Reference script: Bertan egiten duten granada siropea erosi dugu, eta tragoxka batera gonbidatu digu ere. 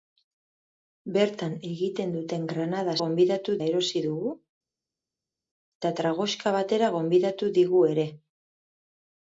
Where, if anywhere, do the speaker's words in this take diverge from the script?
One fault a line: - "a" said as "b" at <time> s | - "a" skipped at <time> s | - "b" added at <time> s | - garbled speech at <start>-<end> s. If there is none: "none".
- "siropea" said as "gonbidatu" at 3.0 s